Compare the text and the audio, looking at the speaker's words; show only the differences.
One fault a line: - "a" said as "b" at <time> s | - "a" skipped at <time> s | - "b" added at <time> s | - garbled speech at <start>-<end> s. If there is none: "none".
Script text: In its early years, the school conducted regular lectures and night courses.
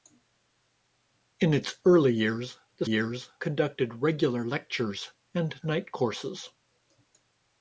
- "school" said as "years" at 2.8 s